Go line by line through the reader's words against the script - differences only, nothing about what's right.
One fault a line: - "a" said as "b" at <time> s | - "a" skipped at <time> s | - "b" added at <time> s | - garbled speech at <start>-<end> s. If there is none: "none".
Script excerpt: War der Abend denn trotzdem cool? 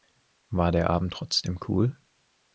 - "denn" skipped at 1.1 s